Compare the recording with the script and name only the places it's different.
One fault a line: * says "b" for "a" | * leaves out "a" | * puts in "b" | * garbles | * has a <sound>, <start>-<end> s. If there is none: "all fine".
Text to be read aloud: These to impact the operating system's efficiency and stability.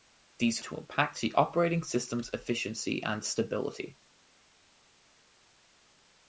all fine